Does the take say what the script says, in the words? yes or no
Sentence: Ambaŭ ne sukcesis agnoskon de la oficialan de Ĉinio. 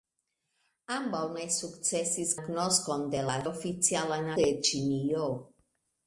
yes